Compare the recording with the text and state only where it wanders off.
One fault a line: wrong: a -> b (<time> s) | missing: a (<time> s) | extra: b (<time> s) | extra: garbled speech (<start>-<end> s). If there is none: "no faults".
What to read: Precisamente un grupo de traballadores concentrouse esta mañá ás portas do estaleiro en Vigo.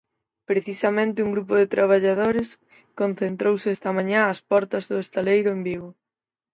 no faults